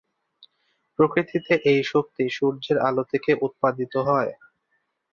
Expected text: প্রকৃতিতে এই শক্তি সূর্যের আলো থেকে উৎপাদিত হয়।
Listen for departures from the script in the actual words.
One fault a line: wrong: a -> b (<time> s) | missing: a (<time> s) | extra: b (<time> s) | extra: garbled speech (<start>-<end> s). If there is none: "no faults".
no faults